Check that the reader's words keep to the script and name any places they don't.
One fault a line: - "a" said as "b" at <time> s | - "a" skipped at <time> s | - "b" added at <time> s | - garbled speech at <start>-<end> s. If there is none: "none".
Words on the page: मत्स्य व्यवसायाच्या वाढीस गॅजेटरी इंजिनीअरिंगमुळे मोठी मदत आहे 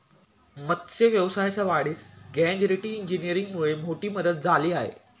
- "झाली" added at 4.4 s